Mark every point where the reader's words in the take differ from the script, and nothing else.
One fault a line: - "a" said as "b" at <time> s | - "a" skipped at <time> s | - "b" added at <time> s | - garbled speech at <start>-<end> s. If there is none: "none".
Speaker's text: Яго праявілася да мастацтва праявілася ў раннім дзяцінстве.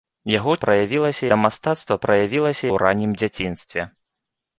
none